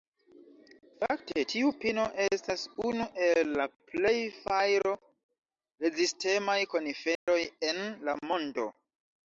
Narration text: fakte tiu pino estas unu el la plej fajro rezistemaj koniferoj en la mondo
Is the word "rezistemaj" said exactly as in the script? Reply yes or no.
yes